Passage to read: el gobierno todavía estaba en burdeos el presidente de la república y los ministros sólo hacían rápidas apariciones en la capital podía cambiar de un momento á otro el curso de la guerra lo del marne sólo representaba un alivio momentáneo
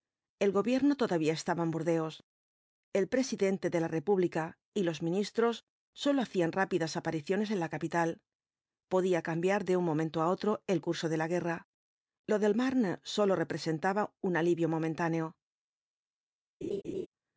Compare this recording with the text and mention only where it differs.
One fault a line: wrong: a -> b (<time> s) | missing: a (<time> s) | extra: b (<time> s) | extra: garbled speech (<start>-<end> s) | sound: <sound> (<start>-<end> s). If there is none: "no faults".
sound: laugh (16.6-17.1 s)